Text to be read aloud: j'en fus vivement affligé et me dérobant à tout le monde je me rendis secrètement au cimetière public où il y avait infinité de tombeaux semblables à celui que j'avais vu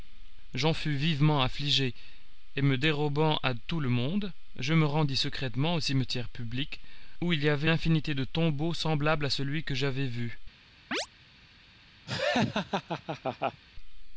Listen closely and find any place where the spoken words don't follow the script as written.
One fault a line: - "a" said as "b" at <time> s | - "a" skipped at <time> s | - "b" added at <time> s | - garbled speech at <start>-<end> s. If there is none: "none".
none